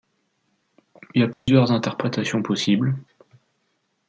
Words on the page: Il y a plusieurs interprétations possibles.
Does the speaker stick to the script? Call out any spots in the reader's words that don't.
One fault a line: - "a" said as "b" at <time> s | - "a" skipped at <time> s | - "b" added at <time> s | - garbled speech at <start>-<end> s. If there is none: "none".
none